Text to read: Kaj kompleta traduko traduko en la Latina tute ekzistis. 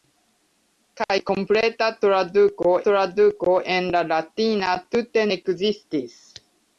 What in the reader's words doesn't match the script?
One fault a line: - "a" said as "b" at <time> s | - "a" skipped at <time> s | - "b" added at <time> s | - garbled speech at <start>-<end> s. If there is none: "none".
none